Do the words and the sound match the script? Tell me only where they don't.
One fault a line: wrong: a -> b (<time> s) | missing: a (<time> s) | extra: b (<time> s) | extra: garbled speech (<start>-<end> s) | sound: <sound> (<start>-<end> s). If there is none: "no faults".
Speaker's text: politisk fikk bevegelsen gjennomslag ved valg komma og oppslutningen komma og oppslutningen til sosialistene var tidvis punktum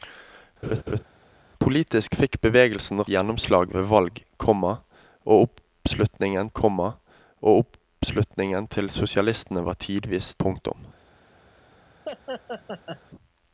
sound: laugh (0.6-1.0 s)
sound: laugh (12.1-13.0 s)